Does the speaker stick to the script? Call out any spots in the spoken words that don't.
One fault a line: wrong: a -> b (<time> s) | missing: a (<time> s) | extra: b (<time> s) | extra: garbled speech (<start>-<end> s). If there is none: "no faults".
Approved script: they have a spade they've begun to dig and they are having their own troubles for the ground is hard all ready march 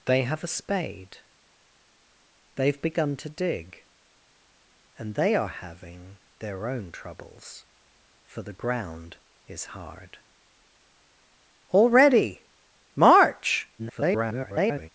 extra: garbled speech (13.8-14.9 s)